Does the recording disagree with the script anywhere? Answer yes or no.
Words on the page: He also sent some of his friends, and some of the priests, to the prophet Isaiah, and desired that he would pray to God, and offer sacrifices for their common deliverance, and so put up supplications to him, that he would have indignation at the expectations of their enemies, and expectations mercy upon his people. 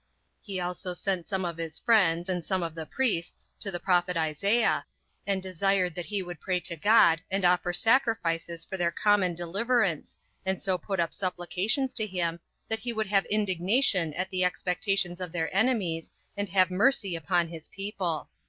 yes